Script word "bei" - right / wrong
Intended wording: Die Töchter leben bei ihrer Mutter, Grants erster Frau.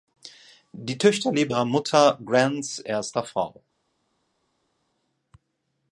wrong